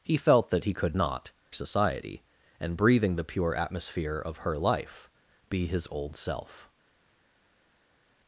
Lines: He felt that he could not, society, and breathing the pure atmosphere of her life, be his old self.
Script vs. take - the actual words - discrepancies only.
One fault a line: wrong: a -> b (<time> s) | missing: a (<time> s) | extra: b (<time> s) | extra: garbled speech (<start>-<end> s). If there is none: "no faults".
no faults